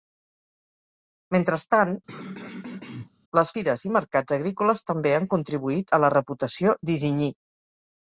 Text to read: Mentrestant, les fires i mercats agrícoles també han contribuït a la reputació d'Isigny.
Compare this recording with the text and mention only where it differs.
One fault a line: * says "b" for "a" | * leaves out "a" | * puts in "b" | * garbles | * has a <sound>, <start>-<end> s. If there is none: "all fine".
* has a throat clearing, 2.1-3.1 s